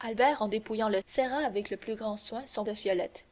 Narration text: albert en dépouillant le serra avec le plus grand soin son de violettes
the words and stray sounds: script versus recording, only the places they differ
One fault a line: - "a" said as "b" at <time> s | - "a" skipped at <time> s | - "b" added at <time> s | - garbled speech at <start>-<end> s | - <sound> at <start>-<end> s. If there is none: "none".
none